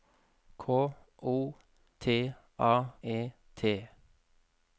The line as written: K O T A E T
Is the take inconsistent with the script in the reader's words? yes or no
no